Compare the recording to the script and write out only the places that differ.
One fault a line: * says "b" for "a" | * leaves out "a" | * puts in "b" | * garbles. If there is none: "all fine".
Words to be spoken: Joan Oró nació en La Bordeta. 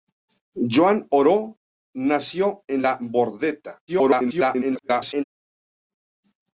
* garbles